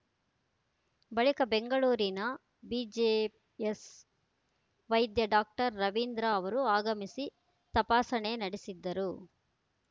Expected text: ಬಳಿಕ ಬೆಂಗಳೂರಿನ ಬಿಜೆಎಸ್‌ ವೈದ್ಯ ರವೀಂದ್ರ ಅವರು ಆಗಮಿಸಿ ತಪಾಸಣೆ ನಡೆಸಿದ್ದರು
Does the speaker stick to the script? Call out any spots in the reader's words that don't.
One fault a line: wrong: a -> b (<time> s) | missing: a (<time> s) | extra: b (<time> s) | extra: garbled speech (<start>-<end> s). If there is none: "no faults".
extra: ಡಾಕ್ಟರ್ (5.3 s)